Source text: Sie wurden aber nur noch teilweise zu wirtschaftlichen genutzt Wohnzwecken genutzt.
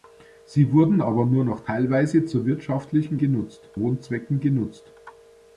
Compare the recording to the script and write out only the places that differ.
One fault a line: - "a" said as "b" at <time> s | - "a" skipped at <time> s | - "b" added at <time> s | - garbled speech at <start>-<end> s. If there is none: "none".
none